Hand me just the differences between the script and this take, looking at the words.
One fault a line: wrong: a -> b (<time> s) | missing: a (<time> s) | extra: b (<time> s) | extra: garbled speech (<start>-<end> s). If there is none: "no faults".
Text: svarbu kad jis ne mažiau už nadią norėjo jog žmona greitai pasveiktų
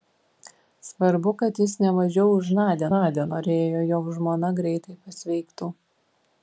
extra: nadią (2.9 s)